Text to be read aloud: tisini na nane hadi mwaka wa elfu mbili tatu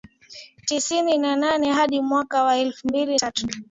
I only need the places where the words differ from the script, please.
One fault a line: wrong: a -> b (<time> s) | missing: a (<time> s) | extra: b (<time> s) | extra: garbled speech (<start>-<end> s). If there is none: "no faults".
no faults